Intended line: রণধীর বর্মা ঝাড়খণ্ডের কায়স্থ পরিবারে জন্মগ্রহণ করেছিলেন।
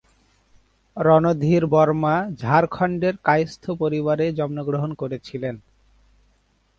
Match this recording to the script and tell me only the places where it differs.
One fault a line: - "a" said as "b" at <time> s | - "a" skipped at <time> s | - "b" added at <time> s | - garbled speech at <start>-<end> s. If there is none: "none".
none